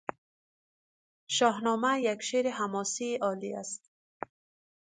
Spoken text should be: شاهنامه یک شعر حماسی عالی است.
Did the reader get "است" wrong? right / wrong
right